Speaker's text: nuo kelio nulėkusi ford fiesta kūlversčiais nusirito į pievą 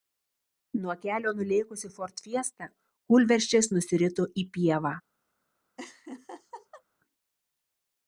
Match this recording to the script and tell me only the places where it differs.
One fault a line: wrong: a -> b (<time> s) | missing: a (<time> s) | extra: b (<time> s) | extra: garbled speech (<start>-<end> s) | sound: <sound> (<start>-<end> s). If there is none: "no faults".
sound: laugh (5.8-6.8 s)